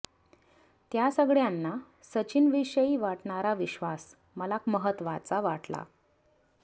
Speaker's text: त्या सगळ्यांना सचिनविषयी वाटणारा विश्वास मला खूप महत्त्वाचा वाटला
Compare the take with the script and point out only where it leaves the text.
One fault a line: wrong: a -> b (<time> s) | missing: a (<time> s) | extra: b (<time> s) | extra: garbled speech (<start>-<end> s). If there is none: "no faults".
missing: खूप (4.6 s)